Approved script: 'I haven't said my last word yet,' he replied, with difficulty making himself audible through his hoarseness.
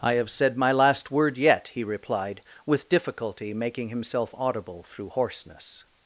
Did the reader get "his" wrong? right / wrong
wrong